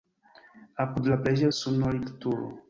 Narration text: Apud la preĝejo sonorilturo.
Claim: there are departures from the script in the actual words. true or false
false